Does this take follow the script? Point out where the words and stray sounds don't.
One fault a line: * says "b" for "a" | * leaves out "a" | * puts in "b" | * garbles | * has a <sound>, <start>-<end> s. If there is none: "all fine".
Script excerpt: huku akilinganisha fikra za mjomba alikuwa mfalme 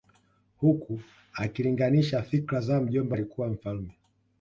all fine